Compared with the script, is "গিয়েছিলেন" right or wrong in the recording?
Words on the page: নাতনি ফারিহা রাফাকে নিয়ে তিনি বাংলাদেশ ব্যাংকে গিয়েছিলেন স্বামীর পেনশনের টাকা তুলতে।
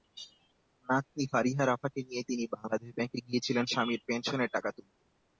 right